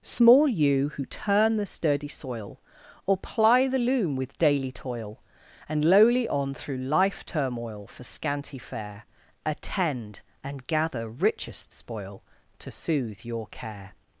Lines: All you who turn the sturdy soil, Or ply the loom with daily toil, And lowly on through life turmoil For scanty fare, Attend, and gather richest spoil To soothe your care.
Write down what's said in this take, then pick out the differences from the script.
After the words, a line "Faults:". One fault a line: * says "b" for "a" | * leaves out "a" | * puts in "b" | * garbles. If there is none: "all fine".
Small you who turn the sturdy soil, Or ply the loom with daily toil, And lowly on through life turmoil For scanty fare, Attend, and gather richest spoil To soothe your care.
Faults:
* says "Small" for "All"